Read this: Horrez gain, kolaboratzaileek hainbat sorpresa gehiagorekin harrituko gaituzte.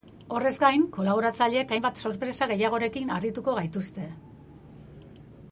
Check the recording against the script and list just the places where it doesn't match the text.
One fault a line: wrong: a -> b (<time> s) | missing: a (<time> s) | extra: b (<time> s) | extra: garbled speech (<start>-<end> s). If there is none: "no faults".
no faults